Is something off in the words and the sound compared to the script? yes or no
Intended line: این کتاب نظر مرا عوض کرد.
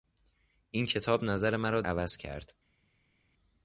no